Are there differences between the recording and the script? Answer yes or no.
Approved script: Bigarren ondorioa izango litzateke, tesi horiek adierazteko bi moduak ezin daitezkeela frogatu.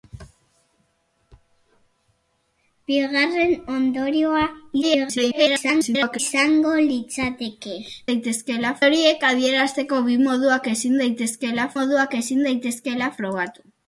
yes